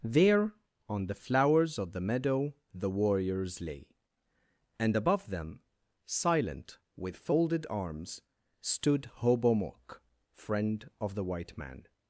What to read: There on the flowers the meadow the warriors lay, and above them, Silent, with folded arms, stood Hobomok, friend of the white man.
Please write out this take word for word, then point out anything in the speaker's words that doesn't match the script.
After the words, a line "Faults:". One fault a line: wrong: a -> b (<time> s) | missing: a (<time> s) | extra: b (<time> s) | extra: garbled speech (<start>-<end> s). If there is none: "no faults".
There on the flowers of the meadow the warriors lay, and above them, Silent, with folded arms, stood Hobomok, friend of the white man.
Faults:
extra: of (1.8 s)